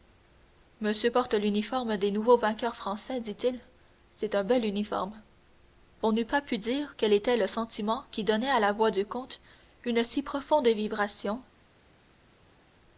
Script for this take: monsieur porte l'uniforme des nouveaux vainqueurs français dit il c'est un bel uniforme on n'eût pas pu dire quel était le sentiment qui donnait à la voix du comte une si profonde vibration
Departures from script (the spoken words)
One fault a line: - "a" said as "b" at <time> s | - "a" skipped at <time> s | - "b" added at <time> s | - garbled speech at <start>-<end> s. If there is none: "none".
none